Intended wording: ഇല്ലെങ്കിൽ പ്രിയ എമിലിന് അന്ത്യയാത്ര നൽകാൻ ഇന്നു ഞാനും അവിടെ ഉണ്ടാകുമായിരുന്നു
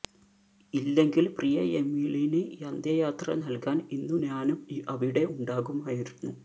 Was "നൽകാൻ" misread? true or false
false